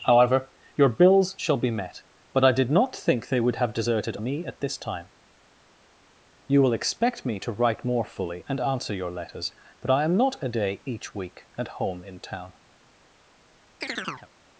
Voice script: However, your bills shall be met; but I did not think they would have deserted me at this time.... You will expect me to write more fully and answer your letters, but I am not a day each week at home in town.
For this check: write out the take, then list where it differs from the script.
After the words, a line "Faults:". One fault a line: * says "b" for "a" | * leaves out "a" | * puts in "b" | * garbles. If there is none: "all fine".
However, your bills shall be met; but I did not think they would have deserted me at this time.... You will expect me to write more fully and answer your letters, but I am not a day each week at home in town.
Faults:
all fine